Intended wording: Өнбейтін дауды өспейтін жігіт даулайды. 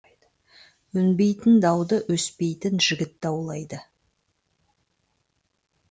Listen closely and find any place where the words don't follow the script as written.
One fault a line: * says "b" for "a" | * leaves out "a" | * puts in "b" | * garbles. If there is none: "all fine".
all fine